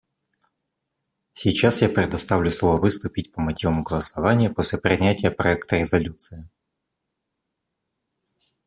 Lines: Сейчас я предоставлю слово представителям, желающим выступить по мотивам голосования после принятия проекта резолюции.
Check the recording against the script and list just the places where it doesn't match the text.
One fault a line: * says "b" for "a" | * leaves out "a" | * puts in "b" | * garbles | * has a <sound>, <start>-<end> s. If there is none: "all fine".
* leaves out "представителям желающим"